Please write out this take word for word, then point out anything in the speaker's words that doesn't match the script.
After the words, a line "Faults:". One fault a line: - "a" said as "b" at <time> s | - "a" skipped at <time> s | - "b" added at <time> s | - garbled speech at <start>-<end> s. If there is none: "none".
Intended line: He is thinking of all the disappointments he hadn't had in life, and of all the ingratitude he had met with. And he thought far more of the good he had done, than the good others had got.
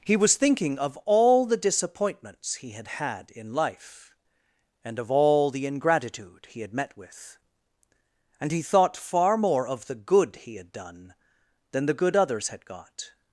He was thinking of all the disappointments he had had in life, and of all the ingratitude he had met with. And he thought far more of the good he had done, than the good others had got.
Faults:
- "is" said as "was" at 0.2 s
- "hadn't" said as "had" at 2.7 s